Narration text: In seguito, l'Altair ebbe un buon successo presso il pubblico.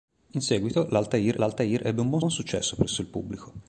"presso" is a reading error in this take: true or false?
false